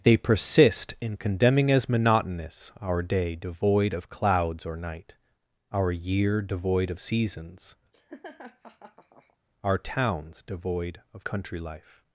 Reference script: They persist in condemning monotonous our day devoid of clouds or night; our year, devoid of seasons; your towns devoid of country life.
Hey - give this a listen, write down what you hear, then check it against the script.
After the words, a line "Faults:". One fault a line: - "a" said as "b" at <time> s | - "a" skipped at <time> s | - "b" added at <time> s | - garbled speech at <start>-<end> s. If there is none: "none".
They persist in condemning as monotonous our day devoid of clouds or night; our year, devoid of seasons; our towns devoid of country life.
Faults:
- "as" added at 1.7 s
- "your" said as "our" at 9.6 s